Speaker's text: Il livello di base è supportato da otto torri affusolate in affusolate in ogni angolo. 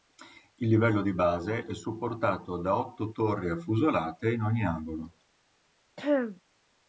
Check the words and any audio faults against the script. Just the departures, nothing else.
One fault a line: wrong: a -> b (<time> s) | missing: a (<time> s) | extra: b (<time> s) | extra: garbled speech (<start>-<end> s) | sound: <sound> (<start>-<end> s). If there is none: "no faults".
missing: affusolate in (4.4 s)
sound: throat clearing (6.0-6.4 s)